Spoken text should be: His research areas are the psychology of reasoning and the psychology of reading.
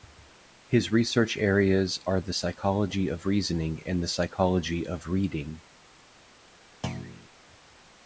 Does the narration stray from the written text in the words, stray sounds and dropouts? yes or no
yes